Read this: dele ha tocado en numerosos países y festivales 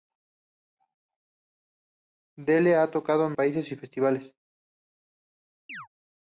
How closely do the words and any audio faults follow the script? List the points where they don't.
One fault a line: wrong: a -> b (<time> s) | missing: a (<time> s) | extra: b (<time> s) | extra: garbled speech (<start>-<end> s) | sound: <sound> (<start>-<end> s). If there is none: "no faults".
missing: numerosos (3.3 s)
sound: chirp (5.7-5.9 s)